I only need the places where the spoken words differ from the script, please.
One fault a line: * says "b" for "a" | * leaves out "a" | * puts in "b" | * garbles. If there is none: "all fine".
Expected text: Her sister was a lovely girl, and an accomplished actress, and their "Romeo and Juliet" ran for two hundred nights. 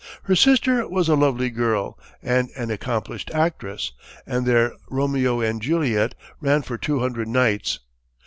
all fine